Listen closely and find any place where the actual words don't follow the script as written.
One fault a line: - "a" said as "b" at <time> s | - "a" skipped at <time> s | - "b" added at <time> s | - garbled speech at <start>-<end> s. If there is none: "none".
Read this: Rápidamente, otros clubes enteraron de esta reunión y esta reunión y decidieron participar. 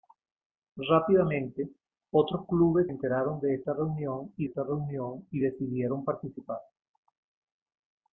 none